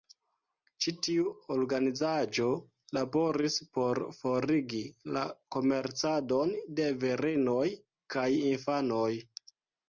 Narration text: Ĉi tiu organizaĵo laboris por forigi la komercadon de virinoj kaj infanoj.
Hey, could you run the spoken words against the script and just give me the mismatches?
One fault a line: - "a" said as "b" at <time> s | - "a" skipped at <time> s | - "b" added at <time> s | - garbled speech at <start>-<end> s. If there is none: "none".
none